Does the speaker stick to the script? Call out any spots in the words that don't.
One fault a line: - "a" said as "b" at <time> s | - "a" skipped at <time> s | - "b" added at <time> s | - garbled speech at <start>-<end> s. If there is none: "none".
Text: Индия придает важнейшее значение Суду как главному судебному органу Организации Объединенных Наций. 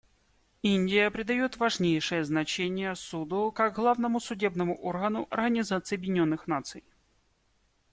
none